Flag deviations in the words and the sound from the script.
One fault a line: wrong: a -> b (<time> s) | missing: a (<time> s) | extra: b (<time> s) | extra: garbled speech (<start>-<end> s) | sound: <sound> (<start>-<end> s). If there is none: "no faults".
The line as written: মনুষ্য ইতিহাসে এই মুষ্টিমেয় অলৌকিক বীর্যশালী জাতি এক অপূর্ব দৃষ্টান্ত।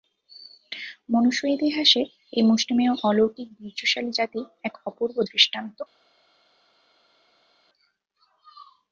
no faults